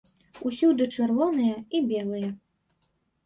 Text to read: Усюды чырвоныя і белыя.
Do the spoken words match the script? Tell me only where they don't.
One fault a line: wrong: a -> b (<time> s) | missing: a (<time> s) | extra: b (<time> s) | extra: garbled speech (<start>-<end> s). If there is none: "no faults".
no faults